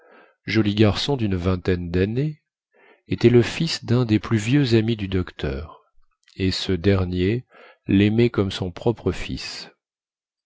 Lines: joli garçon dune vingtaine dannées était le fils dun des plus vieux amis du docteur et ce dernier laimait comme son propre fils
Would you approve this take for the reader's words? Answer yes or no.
yes